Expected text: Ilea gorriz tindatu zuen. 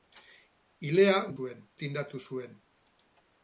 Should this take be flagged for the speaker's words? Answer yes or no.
yes